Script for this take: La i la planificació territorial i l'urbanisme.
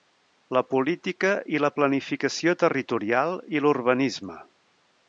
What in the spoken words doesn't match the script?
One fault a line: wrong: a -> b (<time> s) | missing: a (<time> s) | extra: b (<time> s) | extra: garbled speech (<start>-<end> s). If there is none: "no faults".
extra: política (0.7 s)